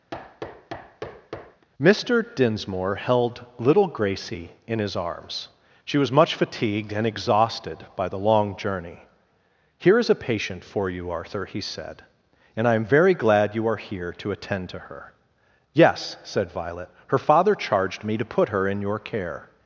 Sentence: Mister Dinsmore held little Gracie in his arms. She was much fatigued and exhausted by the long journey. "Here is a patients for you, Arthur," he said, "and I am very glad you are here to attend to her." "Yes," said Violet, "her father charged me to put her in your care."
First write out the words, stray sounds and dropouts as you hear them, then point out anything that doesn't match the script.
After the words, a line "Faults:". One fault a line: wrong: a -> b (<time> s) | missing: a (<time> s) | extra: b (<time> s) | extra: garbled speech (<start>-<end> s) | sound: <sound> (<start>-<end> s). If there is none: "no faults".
Mister Dinsmore held little Gracie in his arms. She was much fatigued and exhausted by the long journey. "Here is a patient for you, Arthur," he said, "and I am very glad you are here to attend to her." "Yes," said Violet, "her father charged me to put her in your care."
Faults:
sound: thud (0.1-1.7 s)
wrong: patients -> patient (10.1 s)